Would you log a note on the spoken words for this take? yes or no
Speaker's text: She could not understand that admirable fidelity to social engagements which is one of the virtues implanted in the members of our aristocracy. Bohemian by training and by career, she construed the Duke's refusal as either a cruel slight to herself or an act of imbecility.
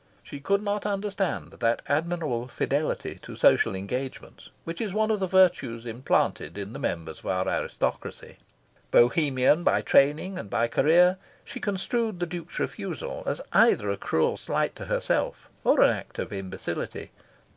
no